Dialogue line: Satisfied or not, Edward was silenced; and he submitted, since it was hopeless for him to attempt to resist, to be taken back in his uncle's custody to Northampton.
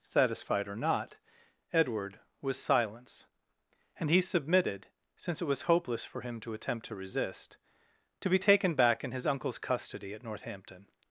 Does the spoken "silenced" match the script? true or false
false